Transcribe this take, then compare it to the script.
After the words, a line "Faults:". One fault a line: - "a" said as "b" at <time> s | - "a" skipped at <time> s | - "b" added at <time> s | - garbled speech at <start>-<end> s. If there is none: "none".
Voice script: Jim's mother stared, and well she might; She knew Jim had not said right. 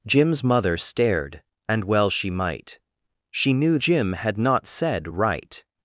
Jim's mother stared, and well she might; She knew Jim had not said right.
Faults:
none